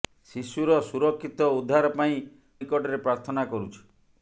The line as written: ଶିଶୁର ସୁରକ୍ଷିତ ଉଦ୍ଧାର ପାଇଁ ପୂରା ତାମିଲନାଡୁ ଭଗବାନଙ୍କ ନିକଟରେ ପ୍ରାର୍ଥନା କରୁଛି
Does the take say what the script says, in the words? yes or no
no